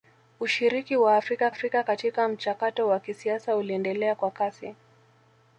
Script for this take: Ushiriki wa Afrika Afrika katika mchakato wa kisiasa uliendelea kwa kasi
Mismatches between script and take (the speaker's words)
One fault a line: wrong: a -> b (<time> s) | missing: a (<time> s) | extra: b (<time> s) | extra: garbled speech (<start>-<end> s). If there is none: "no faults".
no faults